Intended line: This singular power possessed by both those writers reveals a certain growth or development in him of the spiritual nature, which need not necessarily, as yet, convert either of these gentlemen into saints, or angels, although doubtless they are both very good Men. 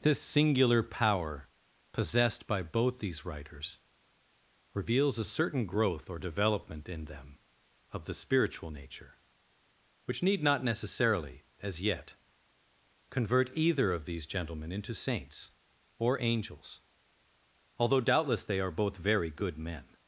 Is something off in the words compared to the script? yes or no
yes